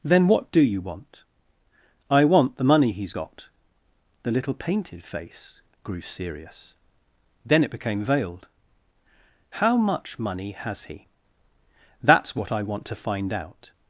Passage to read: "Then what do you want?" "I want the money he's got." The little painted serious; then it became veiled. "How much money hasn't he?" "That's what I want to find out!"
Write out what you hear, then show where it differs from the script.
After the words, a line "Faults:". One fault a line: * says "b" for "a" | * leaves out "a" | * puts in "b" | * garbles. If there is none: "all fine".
"Then what do you want?" "I want the money he's got." The little painted face grew serious; then it became veiled. "How much money has he?" "That's what I want to find out!"
Faults:
* puts in "face grew"
* says "has" for "hasn't"